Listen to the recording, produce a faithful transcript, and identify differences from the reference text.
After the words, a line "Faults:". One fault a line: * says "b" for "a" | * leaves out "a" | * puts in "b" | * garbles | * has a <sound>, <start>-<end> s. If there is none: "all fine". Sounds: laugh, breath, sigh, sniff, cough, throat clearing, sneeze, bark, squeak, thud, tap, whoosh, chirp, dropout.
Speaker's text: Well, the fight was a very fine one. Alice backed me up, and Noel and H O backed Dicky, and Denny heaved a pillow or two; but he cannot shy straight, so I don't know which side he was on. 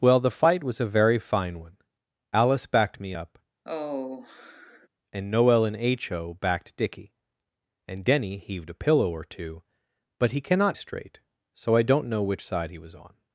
Well, the fight was a very fine one. Alice backed me up, and Noel and H O backed Dicky, and Denny heaved a pillow or two; but he cannot straight, so I don't know which side he was on.
Faults:
* has a sigh, 3.7-4.9 s
* leaves out "shy"